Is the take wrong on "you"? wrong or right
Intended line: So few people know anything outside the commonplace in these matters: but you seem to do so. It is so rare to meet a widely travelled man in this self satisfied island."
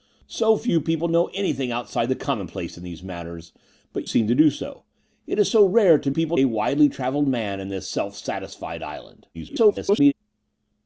wrong